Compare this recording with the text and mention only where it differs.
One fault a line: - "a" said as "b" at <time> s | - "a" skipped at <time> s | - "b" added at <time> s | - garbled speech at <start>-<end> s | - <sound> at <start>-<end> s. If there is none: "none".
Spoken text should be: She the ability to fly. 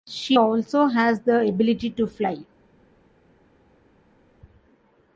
- "also has" added at 0.3 s